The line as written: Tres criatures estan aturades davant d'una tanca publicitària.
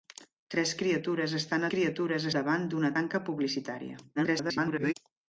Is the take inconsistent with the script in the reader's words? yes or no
yes